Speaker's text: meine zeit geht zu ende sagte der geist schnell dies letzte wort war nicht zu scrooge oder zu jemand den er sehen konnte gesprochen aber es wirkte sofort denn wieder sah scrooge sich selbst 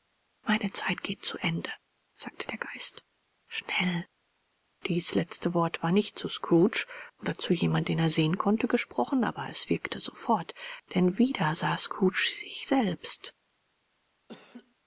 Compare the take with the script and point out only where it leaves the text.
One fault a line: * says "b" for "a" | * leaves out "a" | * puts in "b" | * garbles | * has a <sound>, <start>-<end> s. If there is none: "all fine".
* has a laugh, 14.3-14.7 s